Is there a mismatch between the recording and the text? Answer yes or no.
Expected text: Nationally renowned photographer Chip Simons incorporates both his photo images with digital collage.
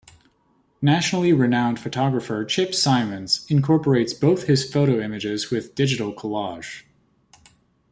no